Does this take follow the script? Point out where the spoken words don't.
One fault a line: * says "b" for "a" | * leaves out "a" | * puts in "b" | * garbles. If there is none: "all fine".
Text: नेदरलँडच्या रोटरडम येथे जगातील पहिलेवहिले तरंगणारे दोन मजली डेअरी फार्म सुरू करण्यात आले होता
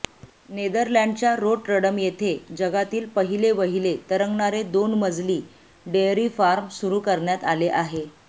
* says "आहे" for "होता"